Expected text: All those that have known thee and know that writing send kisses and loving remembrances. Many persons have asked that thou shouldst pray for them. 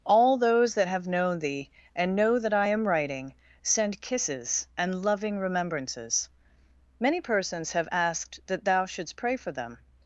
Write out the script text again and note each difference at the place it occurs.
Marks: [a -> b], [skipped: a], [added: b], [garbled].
All those that have known thee and know that [added: I am] writing send kisses and loving remembrances. Many persons have asked that thou shouldst pray for them.